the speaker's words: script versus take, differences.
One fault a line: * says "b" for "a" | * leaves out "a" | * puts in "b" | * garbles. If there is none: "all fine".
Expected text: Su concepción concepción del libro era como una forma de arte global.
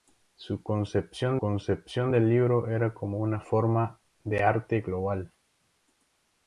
all fine